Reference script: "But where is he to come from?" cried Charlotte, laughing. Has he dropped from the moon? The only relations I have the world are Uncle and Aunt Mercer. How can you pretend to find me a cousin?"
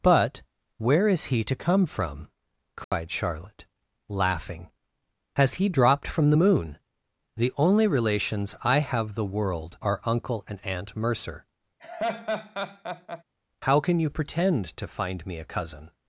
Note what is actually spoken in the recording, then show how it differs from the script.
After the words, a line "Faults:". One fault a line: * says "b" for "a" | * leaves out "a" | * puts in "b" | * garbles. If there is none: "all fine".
"But where is he to come from?" cried Charlotte, laughing. Has he dropped from the moon? The only relations I have the world are Uncle and Aunt Mercer. How can you pretend to find me a cousin?"
Faults:
all fine